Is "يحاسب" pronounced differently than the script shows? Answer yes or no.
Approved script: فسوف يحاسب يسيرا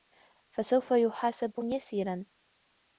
no